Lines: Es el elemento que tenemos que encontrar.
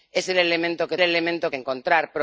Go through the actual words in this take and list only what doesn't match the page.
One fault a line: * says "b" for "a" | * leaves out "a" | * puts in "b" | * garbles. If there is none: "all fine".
* says "elemento" for "tenemos"